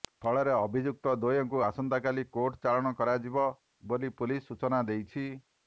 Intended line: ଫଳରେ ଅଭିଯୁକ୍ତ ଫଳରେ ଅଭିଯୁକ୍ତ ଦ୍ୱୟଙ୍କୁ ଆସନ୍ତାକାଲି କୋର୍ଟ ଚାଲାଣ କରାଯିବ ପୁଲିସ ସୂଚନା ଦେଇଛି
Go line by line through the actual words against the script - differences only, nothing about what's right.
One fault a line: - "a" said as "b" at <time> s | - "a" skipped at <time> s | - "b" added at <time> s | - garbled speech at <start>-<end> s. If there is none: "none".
- "ଫଳରେ ଅଭିଯୁକ୍ତ" skipped at 1.1 s
- "ବୋଲି" added at 3.9 s